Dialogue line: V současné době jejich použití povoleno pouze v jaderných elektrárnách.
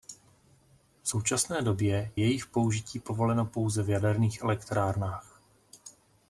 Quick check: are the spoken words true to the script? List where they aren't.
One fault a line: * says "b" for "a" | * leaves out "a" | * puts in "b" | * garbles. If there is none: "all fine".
all fine